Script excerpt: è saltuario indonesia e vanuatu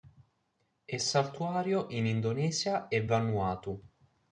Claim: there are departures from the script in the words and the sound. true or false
true